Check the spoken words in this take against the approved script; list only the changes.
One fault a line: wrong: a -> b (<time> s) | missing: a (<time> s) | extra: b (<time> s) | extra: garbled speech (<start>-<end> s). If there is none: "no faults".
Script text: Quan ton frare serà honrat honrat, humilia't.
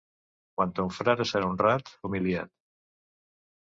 missing: honrat (1.9 s)